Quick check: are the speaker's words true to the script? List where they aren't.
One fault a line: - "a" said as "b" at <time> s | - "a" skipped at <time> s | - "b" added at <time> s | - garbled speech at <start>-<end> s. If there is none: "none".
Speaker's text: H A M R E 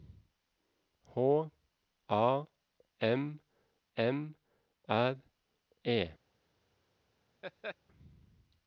- "M" added at 4.0 s